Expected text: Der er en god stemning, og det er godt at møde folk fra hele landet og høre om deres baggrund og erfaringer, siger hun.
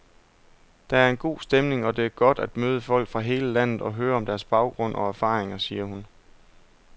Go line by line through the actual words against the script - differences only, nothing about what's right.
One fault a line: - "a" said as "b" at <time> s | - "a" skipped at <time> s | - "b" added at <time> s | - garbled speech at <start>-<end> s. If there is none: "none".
none